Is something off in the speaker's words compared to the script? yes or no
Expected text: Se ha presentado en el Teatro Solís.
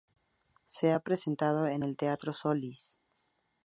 no